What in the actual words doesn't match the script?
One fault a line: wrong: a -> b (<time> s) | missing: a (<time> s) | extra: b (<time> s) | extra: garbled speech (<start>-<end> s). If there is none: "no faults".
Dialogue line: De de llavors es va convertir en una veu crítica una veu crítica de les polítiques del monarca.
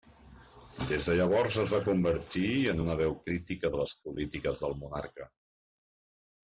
wrong: De -> Des (0.9 s)
missing: una veu crítica (3.8 s)